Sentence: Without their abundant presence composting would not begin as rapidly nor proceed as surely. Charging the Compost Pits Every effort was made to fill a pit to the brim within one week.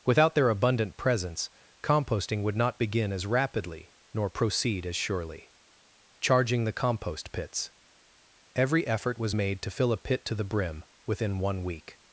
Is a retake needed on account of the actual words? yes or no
no